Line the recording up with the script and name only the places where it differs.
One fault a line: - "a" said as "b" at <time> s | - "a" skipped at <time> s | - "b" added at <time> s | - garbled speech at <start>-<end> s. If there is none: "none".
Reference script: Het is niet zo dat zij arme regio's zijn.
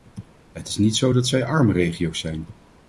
none